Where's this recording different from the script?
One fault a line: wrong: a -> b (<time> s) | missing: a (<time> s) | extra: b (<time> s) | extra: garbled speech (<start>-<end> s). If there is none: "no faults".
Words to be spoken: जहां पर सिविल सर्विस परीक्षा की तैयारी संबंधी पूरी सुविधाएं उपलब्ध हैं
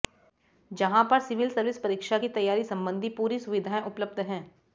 no faults